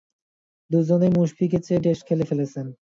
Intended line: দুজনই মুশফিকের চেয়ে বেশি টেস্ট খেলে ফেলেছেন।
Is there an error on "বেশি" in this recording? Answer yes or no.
yes